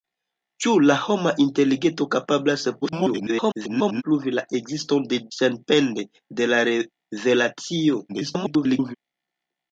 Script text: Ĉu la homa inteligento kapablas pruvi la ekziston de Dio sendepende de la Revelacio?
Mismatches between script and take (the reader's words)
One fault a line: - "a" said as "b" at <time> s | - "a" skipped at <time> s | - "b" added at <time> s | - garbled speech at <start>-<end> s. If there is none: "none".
- garbled speech at 2.8-4.0 s
- "Dio" skipped at 5.2 s
- garbled speech at 8.1-8.9 s